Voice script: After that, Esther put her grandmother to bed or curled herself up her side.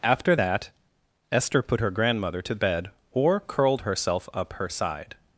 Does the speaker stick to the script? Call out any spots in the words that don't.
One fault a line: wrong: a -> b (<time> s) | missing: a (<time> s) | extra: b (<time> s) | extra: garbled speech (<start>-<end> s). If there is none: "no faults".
no faults